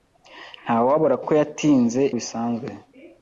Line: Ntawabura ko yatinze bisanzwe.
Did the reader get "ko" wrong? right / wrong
right